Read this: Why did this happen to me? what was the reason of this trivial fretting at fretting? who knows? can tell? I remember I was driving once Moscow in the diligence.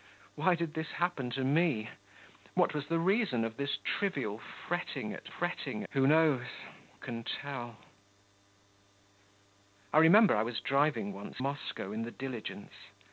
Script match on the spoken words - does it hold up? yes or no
yes